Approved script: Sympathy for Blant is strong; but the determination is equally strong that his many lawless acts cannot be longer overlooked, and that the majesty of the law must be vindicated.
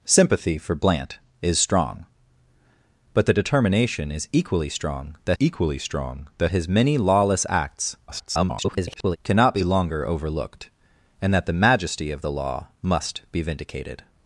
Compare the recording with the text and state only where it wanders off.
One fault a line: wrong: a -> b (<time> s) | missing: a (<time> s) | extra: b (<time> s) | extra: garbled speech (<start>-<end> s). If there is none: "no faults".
extra: equally strong that (5.4 s)
extra: garbled speech (8.1-9.2 s)